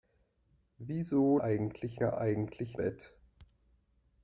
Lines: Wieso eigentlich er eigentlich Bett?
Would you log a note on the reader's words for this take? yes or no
no